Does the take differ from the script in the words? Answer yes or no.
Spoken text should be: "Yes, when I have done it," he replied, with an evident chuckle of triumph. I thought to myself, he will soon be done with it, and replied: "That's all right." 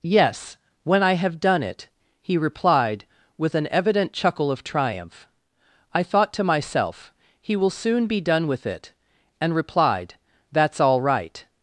no